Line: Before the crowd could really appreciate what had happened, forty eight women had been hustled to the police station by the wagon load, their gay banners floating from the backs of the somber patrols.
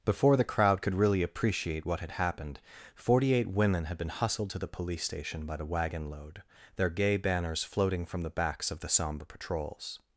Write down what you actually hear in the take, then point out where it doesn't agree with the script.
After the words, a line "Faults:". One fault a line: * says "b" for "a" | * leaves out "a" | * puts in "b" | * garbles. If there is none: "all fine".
Before the crowd could really appreciate what had happened, forty eight women had been hustled to the police station by the wagon load, their gay banners floating from the backs of the somber patrols.
Faults:
all fine